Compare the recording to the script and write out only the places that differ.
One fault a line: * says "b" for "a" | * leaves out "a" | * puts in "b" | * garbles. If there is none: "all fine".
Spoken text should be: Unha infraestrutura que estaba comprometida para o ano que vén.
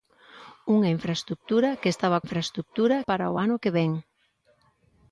* says "infraestrutura" for "comprometida"